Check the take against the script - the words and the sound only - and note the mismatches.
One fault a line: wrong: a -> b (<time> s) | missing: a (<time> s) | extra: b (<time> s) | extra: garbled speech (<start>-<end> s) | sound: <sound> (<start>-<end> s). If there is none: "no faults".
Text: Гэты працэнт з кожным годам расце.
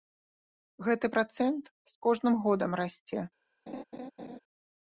sound: laugh (3.7-4.4 s)